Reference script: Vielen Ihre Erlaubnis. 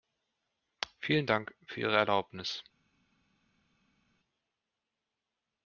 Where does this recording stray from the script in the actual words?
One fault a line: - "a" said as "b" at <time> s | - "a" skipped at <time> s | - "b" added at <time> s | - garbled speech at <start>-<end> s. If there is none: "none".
- "Dank für" added at 1.2 s